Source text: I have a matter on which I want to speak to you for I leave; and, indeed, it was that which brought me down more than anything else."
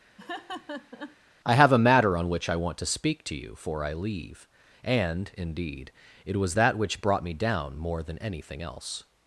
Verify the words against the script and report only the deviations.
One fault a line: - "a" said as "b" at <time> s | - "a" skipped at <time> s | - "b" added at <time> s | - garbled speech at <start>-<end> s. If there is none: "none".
none